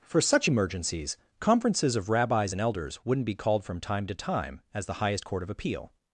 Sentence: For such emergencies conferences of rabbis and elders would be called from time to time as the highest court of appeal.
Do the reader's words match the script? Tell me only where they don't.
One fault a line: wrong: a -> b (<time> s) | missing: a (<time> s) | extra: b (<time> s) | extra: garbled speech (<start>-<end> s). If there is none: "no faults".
wrong: would -> wouldn't (3.0 s)